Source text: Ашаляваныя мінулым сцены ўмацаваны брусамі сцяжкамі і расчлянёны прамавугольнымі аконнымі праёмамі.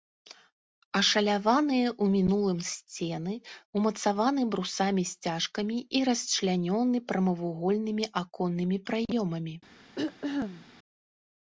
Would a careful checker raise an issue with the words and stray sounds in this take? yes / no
yes